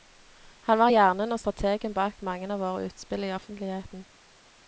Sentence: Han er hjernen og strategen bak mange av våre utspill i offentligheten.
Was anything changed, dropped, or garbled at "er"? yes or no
yes